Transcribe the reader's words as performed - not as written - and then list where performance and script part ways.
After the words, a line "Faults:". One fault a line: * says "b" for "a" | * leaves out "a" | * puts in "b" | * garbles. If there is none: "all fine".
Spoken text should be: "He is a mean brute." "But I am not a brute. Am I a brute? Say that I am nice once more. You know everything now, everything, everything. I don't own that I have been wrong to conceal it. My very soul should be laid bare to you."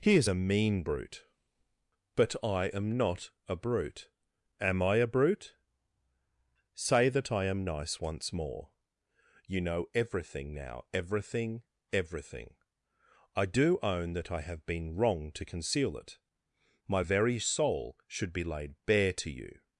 "He is a mean brute." "But I am not a brute. Am I a brute? Say that I am nice once more. You know everything now, everything, everything. I do own that I have been wrong to conceal it. My very soul should be laid bare to you."
Faults:
* says "do" for "don't"